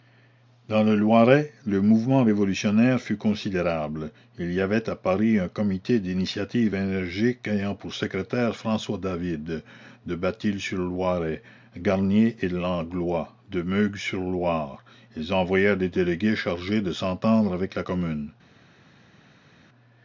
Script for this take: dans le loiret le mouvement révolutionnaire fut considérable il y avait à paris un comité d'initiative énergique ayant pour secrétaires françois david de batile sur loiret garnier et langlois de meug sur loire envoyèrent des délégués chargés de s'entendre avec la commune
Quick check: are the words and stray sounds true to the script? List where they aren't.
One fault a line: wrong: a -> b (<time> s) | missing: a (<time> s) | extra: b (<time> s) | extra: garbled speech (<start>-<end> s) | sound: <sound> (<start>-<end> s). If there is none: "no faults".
extra: ils (15.2 s)